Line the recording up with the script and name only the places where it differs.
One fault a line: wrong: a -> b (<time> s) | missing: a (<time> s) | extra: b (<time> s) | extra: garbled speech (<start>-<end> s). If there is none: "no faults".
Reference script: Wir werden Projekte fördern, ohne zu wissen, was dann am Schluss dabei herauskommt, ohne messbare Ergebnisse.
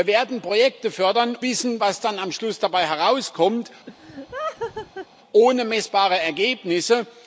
missing: ohne zu (1.4 s)